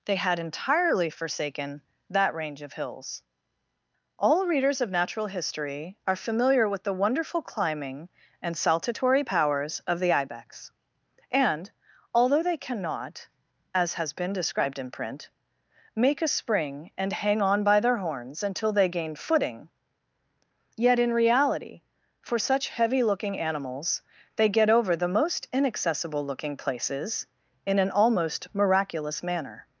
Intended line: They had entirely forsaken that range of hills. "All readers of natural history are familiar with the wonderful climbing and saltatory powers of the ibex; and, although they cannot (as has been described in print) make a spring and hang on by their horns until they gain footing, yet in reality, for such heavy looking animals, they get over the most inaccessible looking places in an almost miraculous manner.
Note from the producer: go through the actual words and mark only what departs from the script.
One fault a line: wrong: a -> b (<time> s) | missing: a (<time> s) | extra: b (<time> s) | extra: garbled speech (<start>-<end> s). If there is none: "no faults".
no faults